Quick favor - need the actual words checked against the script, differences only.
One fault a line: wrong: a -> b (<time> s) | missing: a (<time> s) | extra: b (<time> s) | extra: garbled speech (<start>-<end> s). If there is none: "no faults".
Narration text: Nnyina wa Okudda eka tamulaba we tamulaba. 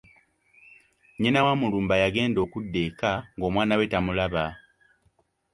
extra: Mulumba yagenda (1.6 s)
wrong: tamulaba -> ng'omwana (3.4 s)